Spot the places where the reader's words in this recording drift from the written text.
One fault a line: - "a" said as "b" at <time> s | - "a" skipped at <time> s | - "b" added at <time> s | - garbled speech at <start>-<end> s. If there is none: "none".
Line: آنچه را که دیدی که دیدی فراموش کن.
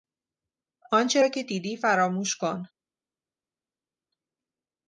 - "که دیدی" skipped at 1.8 s